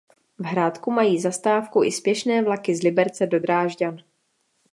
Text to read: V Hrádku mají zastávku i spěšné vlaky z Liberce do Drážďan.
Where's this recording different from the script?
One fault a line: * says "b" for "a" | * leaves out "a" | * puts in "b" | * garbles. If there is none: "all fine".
all fine